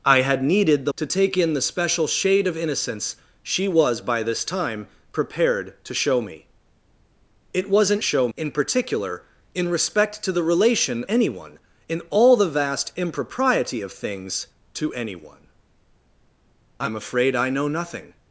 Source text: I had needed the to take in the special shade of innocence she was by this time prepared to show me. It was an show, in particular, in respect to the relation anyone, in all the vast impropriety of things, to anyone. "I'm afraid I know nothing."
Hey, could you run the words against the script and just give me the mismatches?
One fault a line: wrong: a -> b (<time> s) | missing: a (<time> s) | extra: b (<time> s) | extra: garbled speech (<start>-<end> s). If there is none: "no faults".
no faults